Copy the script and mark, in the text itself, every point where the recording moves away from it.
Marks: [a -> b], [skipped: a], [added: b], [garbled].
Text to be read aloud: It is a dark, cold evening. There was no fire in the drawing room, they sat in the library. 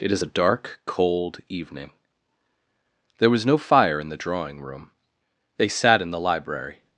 It is a dark, cold evening. There was no fire in the drawing room, they sat in the library.